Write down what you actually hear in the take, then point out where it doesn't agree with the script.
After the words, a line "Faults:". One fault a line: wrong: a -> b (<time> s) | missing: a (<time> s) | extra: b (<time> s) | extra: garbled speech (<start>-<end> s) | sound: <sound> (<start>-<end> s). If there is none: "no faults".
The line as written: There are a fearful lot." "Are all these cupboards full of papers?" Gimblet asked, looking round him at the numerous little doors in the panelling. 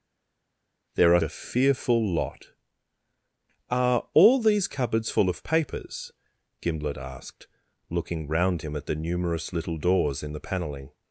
There are a fearful lot." "Are all these cupboards full of papers?" Gimblet asked, looking round him at the numerous little doors in the panelling.
Faults:
no faults